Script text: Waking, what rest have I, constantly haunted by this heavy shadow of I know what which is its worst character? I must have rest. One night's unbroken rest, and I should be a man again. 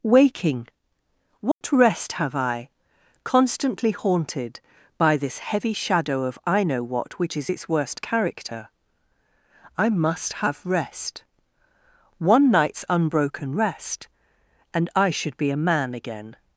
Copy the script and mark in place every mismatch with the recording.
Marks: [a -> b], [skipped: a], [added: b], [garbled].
Waking, what rest have I, constantly haunted by this heavy shadow of I know what which is its worst character? I must have rest. One night's unbroken rest, and I should be a man again.